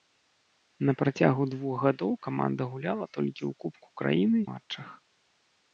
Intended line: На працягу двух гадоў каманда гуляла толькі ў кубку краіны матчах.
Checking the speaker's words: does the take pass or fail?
pass